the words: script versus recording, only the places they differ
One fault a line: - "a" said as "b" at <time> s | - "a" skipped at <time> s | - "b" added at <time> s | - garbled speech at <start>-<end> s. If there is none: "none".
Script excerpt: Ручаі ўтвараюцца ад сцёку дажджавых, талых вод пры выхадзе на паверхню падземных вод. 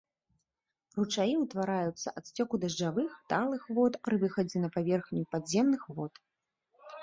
none